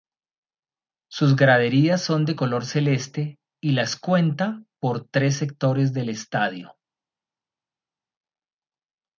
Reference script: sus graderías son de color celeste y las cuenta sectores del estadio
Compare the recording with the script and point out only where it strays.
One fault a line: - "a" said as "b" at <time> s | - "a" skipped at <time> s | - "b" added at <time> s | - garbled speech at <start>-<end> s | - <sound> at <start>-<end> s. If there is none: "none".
- "por tres" added at 4.8 s